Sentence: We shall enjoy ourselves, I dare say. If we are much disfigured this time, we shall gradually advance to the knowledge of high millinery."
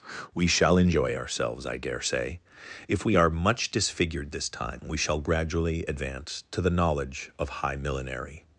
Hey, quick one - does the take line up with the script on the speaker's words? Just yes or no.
yes